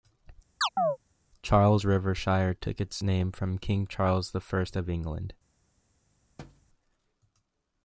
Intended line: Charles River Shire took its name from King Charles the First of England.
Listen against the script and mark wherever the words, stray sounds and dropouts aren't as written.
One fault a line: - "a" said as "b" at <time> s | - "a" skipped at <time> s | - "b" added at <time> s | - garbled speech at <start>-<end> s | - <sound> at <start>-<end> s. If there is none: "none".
- chirp at 0.6-1.0 s
- thud at 6.4-6.7 s